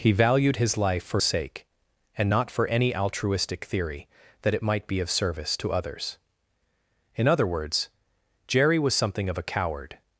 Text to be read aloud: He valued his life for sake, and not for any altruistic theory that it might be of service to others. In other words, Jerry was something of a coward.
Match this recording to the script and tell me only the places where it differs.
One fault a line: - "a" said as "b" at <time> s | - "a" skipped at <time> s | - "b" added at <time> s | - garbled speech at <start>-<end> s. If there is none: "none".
none